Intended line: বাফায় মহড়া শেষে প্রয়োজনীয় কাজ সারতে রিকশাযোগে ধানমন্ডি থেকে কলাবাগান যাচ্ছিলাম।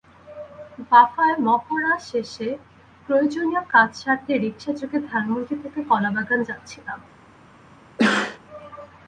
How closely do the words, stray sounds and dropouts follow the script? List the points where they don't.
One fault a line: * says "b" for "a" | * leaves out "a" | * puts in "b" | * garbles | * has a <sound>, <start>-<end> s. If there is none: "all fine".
* has a sneeze, 8.0-8.4 s